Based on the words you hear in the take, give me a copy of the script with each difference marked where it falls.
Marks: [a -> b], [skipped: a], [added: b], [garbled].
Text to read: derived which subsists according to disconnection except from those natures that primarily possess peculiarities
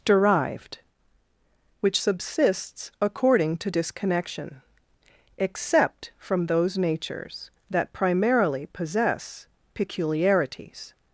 derived which subsists according to disconnection except from those natures that primarily possess peculiarities